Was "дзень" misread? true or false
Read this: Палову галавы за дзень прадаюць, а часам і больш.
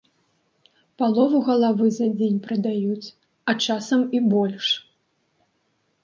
false